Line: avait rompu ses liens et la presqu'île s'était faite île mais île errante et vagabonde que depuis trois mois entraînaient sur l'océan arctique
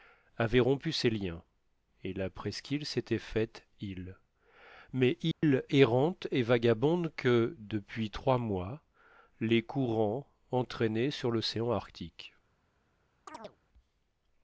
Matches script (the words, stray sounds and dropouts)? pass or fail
fail